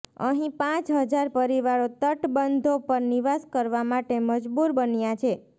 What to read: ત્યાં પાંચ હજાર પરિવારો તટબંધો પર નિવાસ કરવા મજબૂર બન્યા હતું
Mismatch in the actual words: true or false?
true